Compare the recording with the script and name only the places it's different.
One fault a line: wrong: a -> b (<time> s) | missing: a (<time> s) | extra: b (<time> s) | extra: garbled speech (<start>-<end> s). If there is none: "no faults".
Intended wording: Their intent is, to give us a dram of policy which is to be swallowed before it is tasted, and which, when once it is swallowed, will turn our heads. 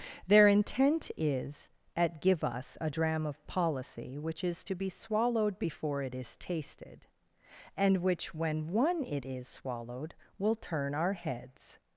wrong: to -> at (1.9 s)
wrong: once -> one (8.7 s)